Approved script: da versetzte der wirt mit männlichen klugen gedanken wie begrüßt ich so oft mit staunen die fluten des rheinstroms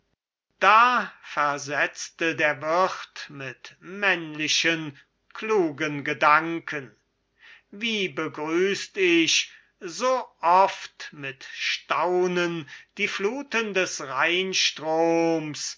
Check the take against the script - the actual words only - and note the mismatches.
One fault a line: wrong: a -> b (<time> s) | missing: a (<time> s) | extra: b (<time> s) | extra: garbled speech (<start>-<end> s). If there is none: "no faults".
no faults